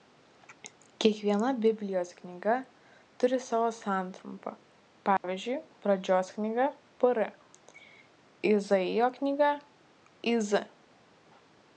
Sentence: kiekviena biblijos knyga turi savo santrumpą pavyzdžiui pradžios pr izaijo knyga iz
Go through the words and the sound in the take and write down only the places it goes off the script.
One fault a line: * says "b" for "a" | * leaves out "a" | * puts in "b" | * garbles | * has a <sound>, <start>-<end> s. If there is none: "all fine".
* has a dropout, 5.2-5.2 s
* puts in "knyga"